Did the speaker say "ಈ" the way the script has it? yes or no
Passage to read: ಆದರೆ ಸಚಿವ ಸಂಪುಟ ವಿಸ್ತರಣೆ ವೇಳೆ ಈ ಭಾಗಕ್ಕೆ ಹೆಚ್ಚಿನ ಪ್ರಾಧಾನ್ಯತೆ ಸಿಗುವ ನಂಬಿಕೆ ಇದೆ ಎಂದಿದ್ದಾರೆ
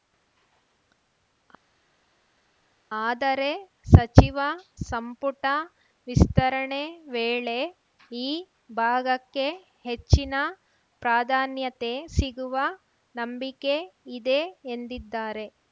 yes